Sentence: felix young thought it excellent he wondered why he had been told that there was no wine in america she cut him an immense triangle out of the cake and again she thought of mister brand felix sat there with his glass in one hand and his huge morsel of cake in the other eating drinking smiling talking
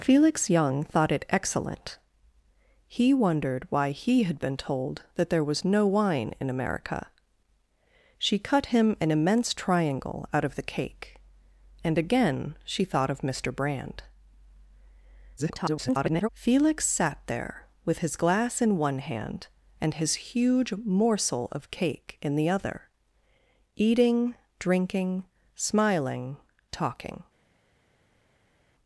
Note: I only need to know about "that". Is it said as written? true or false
true